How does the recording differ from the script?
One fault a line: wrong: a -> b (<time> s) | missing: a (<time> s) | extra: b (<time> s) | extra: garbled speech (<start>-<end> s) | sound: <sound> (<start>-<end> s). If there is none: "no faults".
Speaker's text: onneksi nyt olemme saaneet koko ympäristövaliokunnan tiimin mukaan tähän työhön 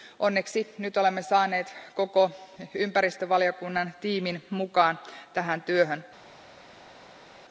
no faults